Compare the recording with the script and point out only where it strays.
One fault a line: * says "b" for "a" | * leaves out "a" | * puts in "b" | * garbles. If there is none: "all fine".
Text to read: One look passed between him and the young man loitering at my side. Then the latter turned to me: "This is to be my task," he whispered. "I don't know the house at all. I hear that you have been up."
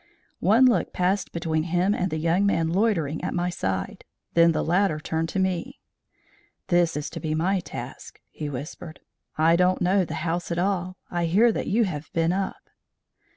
all fine